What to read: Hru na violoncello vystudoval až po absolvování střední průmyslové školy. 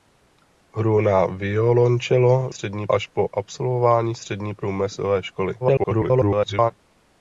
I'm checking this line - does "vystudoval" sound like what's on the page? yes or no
no